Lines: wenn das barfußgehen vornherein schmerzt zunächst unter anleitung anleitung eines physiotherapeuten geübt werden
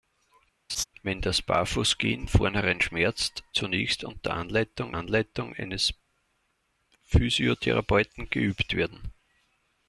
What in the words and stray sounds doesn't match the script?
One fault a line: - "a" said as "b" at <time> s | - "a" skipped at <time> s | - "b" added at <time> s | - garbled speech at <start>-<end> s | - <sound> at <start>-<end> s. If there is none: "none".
- laugh at 0.7-0.8 s